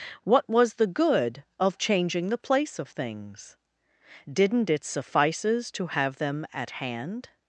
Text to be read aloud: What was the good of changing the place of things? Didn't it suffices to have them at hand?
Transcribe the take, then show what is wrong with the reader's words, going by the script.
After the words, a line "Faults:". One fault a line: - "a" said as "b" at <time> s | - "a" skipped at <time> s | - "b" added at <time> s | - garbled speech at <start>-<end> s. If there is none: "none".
What was the good of changing the place of things? Didn't it suffices to have them at hand?
Faults:
none